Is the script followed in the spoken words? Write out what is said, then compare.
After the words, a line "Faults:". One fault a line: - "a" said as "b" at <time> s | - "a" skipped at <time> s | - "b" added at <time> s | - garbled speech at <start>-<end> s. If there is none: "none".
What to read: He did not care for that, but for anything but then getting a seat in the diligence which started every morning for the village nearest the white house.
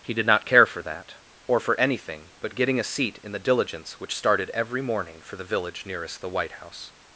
He did not care for that, or for anything but getting a seat in the diligence which started every morning for the village nearest the white house.
Faults:
- "but" said as "or" at 1.5 s
- "then" skipped at 2.5 s